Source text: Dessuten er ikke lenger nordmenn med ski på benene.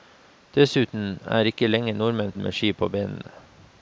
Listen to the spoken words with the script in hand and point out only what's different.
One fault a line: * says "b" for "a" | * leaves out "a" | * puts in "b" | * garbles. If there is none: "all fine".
all fine